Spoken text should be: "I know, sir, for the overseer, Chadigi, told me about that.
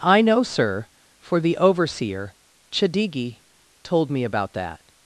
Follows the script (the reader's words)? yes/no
yes